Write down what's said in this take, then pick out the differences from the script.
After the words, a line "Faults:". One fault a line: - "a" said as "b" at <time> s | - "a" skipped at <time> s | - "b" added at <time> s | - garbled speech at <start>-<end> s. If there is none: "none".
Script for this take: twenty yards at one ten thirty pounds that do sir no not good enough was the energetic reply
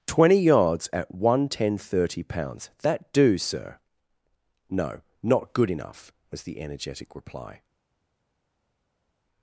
twenty yards at one ten thirty pounds that do sir no not good enough was the energetic reply
Faults:
none